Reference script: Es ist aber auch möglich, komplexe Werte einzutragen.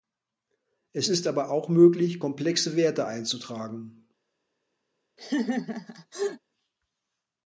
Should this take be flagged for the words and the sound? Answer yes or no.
yes